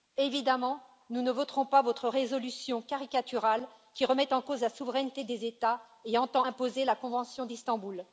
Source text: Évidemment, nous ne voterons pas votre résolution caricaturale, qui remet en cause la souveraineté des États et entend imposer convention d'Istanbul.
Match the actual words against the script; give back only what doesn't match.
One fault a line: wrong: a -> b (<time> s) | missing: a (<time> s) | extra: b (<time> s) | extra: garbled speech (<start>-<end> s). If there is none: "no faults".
extra: la (6.8 s)